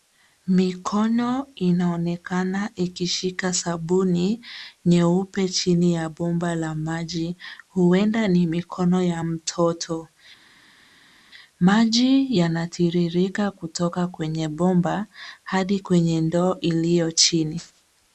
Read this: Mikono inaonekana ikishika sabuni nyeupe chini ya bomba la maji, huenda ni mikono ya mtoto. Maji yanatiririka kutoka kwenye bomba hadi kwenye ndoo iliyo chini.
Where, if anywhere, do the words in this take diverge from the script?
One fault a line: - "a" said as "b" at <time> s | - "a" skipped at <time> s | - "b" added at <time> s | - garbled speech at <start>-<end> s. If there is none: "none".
none